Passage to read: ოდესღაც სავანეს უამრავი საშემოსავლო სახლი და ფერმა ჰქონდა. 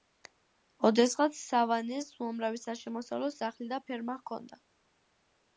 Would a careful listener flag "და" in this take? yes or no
no